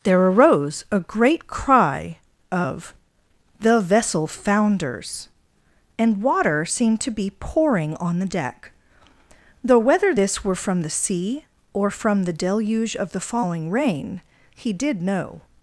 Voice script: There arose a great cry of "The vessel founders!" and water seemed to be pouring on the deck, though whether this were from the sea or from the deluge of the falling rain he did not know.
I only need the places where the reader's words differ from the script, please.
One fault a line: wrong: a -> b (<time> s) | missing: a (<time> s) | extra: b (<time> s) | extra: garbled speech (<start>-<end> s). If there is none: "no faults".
missing: not (15.0 s)